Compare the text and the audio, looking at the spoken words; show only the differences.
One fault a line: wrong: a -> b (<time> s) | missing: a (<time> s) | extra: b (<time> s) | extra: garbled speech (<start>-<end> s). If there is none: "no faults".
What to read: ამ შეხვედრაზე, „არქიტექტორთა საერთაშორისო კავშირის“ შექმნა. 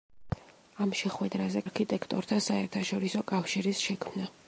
no faults